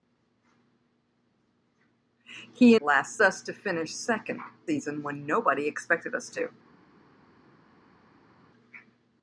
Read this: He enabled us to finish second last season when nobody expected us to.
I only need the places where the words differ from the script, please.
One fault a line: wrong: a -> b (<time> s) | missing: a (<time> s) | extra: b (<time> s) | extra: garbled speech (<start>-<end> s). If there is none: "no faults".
wrong: enabled -> last (2.8 s)
missing: last (4.4 s)